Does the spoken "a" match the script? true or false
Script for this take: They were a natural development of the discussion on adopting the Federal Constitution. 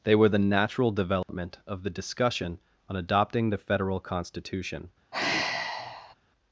false